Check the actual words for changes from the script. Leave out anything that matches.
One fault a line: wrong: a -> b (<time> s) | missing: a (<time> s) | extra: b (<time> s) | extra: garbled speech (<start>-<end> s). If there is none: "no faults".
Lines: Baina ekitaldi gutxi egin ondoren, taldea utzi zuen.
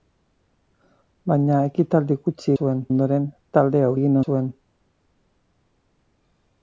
wrong: egin -> zuen (2.5 s)
wrong: utzi -> egin (3.9 s)